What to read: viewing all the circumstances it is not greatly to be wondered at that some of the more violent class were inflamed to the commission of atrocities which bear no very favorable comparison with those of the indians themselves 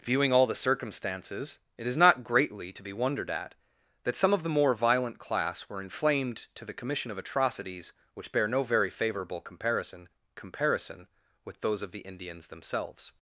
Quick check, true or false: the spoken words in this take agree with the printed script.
false